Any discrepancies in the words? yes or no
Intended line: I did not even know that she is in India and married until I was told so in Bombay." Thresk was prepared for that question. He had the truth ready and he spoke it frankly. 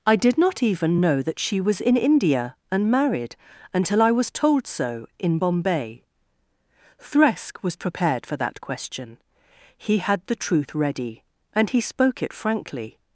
yes